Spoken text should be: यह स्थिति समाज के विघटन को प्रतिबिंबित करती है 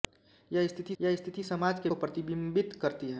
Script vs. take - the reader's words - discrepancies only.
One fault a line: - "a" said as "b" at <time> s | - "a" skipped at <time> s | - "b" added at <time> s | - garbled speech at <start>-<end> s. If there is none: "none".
- "यह स्थिति" added at 1.0 s
- "विघटन" skipped at 1.9 s